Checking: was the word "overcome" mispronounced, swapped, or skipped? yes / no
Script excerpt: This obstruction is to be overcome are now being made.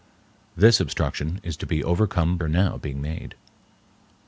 no